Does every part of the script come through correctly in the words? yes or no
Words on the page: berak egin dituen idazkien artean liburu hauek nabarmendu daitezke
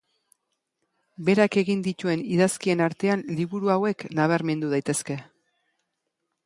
yes